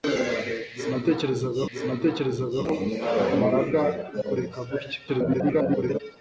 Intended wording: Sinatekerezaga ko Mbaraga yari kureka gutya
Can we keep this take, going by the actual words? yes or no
no